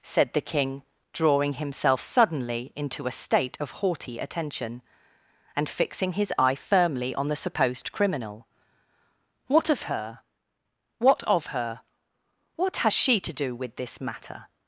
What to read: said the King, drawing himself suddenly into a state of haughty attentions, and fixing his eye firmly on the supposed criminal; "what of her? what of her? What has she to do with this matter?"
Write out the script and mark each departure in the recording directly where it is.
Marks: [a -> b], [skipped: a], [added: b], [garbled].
said the King, drawing himself suddenly into a state of haughty [attentions, -> attention] and fixing his eye firmly on the supposed criminal; "what of her? what of her? What has she to do with this matter?"